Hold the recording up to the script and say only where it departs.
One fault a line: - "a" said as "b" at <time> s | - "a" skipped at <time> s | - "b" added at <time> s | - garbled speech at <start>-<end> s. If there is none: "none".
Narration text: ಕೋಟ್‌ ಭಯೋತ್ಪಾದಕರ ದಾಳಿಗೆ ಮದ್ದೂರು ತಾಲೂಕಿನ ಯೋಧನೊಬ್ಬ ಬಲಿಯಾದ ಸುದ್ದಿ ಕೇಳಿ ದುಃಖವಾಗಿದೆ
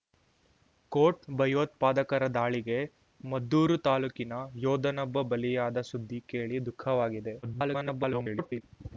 - garbled speech at 7.4-8.6 s